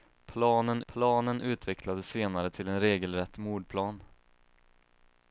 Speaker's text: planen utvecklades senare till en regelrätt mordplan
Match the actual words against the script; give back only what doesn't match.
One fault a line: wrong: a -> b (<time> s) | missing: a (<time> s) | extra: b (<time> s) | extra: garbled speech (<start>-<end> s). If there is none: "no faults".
extra: planen (0.9 s)